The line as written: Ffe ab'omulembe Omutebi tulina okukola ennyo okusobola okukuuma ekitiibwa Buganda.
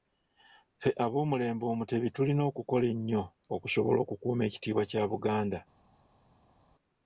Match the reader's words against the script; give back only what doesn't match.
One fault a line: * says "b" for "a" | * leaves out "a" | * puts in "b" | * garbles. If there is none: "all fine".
* puts in "kya"